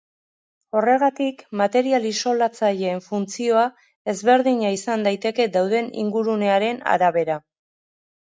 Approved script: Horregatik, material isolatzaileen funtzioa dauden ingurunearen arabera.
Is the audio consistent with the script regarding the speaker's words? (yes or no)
no